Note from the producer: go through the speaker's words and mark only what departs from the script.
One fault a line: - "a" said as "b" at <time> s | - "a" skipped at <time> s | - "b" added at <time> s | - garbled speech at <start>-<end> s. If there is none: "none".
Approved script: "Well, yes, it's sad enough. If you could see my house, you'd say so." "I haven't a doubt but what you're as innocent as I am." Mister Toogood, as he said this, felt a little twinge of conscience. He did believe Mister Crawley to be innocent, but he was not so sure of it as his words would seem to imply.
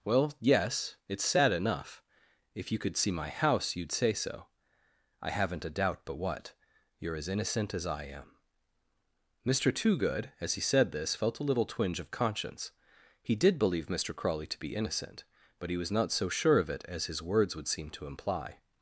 none